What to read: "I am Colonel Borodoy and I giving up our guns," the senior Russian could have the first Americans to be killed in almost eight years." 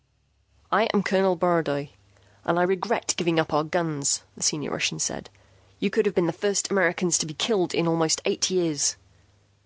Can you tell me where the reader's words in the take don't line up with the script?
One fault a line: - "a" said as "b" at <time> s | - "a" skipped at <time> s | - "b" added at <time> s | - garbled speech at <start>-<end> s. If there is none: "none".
- "regret" added at 2.6 s
- "said You" added at 5.0 s
- "been" added at 6.1 s